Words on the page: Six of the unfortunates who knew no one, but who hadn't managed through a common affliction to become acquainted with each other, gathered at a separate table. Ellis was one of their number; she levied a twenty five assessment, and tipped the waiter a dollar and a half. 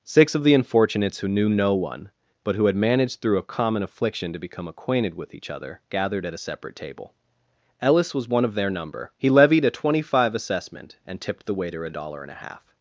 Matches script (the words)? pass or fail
fail